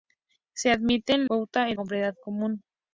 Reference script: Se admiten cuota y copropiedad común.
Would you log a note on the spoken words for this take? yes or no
no